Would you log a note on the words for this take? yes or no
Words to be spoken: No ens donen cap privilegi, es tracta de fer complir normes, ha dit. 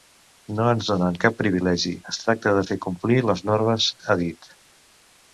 yes